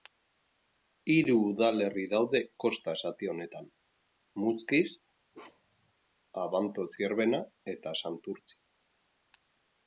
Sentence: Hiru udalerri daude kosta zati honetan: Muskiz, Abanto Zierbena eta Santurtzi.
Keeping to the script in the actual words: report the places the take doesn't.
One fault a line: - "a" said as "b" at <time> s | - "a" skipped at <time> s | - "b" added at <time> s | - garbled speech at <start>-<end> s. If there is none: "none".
none